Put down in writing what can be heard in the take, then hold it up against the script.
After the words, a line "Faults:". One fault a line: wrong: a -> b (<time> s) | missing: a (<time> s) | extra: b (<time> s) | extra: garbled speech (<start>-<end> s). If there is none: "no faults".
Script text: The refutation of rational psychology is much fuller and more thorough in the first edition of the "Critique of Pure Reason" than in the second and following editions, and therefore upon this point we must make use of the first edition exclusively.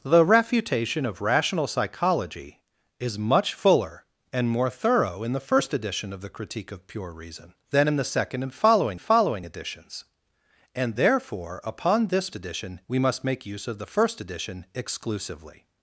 The refutation of rational psychology is much fuller and more thorough in the first edition of the "Critique of Pure Reason" than in the second and following following editions, and therefore upon this edition we must make use of the first edition exclusively.
Faults:
extra: following (9.0 s)
wrong: point -> edition (12.3 s)